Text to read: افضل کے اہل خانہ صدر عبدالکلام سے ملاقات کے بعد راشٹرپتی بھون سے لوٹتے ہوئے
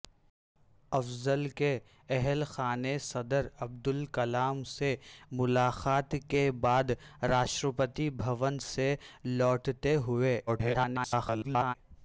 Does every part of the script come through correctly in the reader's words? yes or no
no